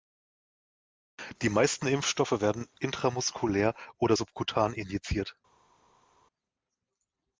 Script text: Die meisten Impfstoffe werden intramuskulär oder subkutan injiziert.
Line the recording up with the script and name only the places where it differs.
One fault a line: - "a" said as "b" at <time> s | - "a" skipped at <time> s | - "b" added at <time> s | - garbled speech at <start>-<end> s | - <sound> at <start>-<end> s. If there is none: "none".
none